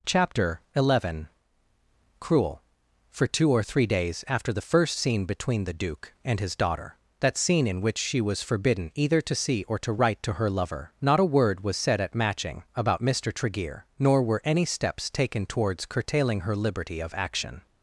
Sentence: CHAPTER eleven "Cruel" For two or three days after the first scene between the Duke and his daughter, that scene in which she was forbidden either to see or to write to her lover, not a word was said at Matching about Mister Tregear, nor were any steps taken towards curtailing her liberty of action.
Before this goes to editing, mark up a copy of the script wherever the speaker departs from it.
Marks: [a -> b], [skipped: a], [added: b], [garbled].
CHAPTER eleven "Cruel" For two or three days after the first scene between the Duke and his daughter, that scene in which she was forbidden either to see or to write to her lover, not a word was said at Matching about Mister Tregear, nor were any steps taken towards curtailing her liberty of action.